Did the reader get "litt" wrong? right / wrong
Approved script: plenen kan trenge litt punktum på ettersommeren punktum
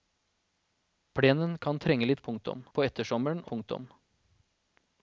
right